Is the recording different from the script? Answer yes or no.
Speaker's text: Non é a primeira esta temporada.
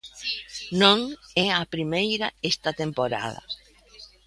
no